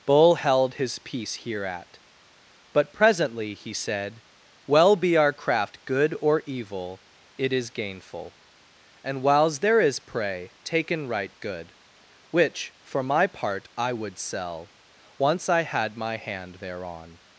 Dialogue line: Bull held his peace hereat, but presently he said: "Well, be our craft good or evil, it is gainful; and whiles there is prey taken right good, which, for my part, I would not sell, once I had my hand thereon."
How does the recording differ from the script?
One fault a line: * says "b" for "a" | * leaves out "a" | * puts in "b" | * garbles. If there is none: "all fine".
* leaves out "not"